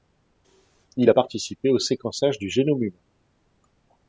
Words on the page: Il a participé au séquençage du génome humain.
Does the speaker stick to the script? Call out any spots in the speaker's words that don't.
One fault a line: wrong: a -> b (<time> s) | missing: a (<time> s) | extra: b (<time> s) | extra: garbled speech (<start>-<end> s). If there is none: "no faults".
no faults